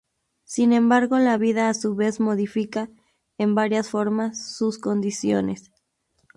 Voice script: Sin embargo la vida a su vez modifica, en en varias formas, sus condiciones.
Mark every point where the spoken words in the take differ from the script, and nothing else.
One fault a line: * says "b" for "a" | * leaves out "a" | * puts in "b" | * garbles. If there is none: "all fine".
* leaves out "en"